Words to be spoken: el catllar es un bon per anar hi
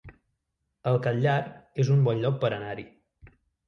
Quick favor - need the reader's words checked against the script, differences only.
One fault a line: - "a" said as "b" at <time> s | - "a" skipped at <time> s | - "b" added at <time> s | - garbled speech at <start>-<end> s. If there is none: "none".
- "lloc" added at 2.3 s